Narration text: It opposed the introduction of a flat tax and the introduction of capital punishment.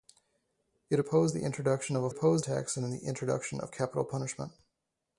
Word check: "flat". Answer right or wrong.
wrong